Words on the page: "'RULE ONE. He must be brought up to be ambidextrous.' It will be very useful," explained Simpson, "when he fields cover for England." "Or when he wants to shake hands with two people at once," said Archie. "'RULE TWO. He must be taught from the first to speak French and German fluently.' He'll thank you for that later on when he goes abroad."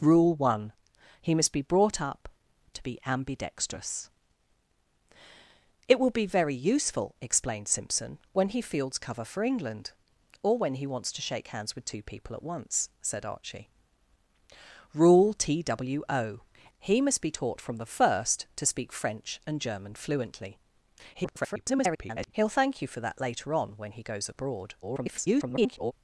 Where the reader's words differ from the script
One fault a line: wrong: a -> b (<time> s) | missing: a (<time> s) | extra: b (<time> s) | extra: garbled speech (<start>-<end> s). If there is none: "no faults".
extra: garbled speech (21.1-22.3 s)
extra: garbled speech (24.8-25.9 s)